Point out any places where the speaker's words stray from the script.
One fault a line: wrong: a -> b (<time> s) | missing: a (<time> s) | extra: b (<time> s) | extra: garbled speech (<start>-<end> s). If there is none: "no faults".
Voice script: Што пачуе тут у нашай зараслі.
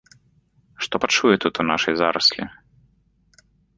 no faults